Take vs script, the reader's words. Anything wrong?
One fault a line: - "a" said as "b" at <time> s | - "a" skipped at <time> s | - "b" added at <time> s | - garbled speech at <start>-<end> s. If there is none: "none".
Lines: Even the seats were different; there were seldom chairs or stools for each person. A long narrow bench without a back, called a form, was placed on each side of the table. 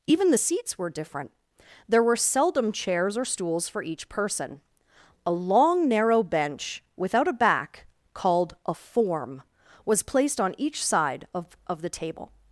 - "of" added at 11.7 s